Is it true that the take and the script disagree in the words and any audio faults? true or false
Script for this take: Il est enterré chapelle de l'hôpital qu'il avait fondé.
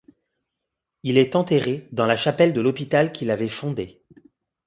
true